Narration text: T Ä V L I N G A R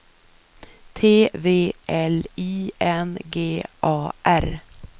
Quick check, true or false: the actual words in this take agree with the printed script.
false